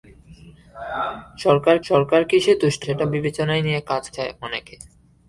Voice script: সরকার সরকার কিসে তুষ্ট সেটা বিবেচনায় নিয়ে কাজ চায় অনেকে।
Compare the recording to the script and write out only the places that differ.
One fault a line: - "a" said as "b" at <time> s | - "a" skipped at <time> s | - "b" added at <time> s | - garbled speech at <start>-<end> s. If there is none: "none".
none